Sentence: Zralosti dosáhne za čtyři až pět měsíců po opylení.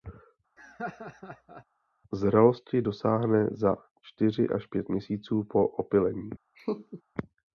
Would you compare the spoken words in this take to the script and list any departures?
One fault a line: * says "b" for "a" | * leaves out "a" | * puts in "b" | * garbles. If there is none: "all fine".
all fine